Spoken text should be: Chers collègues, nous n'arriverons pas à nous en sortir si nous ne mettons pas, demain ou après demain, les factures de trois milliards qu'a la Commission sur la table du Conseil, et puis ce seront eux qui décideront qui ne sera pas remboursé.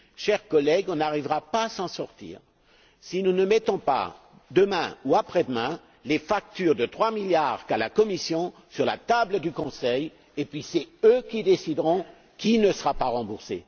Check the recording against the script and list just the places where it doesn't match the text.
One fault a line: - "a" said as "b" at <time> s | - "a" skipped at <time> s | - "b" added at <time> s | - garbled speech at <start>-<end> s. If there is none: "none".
none